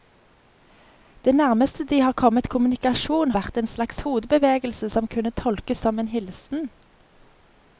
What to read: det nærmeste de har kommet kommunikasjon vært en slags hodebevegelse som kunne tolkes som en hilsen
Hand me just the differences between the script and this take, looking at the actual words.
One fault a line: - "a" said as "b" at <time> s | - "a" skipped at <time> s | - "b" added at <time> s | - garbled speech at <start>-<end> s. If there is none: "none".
none